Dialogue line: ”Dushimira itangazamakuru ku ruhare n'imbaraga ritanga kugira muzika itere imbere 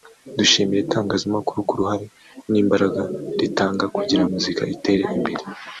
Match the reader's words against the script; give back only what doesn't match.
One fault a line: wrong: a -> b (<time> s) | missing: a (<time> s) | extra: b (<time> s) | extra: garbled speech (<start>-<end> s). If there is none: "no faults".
no faults